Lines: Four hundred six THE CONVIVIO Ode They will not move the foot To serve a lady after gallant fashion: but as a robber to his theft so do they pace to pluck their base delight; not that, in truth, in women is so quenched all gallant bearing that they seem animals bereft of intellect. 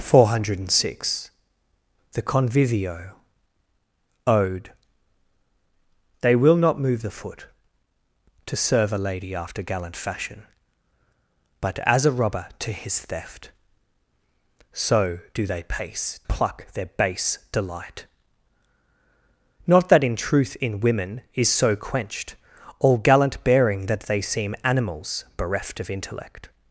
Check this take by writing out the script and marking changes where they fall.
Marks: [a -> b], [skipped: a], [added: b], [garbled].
Four hundred six THE CONVIVIO Ode They will not move the foot To serve a lady after gallant fashion: but as a robber to his theft so do they pace [skipped: to] pluck their base delight; not that, in truth, in women is so quenched all gallant bearing that they seem animals bereft of intellect.